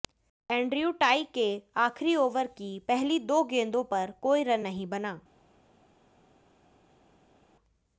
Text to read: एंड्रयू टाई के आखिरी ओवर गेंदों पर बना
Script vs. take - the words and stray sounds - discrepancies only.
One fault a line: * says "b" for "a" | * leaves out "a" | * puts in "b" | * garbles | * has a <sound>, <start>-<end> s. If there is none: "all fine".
* puts in "की पहली दो"
* puts in "कोई रन नहीं"